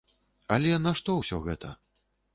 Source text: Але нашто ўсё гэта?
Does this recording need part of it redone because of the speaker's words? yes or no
no